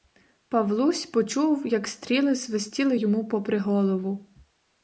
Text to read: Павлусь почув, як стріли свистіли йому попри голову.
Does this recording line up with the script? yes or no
yes